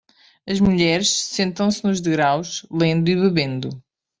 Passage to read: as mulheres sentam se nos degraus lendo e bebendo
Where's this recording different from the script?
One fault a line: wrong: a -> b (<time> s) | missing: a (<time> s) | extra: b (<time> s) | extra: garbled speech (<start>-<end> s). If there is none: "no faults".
no faults